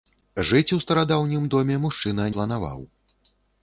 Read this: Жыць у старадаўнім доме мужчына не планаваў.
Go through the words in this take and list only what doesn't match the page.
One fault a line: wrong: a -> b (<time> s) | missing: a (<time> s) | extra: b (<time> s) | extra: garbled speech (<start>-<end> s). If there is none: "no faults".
missing: не (2.2 s)